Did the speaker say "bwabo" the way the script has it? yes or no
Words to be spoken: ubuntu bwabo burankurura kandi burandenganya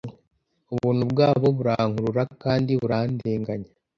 yes